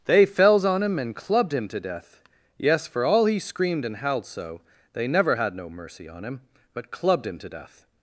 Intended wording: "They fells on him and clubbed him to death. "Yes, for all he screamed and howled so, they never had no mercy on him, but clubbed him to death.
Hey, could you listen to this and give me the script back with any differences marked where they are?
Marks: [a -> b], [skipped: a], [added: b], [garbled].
"They fells on him and clubbed him to death. "Yes, for all he screamed and howled so, they never had no mercy on him, but clubbed him to death.